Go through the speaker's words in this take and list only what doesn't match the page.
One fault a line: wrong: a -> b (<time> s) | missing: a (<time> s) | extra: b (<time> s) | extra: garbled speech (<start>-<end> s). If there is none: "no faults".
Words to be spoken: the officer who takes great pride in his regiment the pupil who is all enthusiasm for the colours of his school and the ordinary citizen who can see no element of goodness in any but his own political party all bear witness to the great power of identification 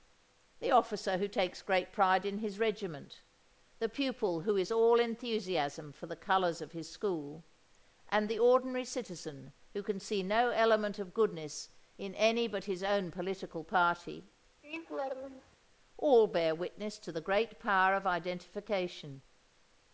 no faults